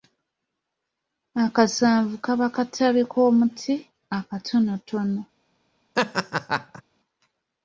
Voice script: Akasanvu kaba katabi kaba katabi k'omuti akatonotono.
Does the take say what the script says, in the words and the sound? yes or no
no